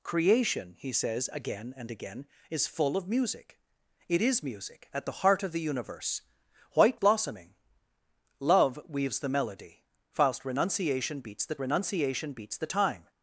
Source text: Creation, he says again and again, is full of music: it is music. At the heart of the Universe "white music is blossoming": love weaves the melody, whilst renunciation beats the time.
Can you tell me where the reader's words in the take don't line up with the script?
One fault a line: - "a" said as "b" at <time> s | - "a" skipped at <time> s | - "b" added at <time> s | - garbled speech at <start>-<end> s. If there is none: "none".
- "music is" skipped at 7.0 s
- "renunciation beats the" added at 11.6 s